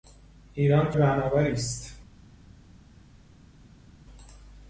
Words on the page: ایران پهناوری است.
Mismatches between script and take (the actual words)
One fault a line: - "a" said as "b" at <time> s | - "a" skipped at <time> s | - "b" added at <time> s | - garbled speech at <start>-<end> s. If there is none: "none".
none